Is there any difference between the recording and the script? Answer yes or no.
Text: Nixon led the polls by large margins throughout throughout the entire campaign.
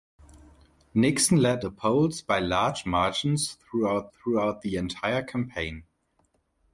no